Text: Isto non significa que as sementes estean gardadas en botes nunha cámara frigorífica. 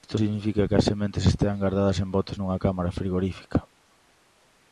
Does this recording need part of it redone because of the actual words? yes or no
yes